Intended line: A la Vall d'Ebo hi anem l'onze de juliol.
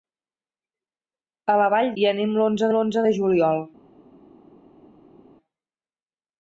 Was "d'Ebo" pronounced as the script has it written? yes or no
no